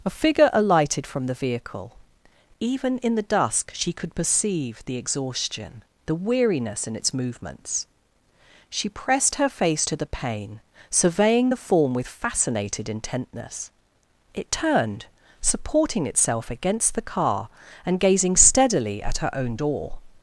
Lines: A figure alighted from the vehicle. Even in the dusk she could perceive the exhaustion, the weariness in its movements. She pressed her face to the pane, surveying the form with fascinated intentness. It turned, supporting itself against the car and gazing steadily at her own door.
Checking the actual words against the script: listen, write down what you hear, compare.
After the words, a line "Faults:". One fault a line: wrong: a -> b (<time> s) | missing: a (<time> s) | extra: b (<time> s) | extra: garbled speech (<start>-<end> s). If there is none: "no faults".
A figure alighted from the vehicle. Even in the dusk she could perceive the exhaustion, the weariness in its movements. She pressed her face to the pane, surveying the form with fascinated intentness. It turned, supporting itself against the car and gazing steadily at her own door.
Faults:
no faults